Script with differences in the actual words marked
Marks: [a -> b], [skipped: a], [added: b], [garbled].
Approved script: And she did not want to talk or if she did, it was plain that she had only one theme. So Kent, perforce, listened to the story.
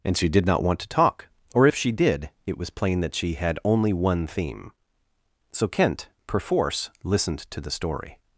And she did not want to talk or if she did, it was plain that she had only one theme. So Kent, perforce, listened to the story.